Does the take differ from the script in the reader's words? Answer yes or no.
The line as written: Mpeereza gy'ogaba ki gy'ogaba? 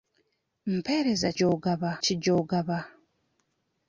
no